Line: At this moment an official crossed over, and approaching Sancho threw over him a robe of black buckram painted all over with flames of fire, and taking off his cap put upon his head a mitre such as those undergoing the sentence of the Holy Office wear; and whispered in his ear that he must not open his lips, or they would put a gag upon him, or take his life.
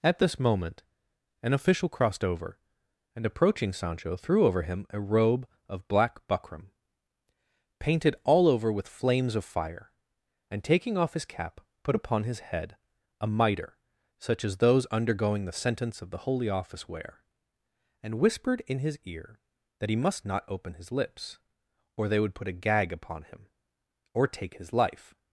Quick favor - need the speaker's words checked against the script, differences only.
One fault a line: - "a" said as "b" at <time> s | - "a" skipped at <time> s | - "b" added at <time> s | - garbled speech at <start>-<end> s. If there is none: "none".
none